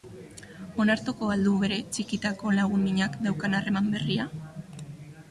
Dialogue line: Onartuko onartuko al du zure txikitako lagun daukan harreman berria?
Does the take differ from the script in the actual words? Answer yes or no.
yes